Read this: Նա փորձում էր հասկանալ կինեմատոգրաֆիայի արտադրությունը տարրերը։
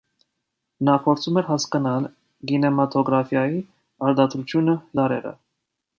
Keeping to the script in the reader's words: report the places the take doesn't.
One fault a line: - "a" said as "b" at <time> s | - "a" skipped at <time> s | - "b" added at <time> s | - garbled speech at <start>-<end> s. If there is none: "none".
none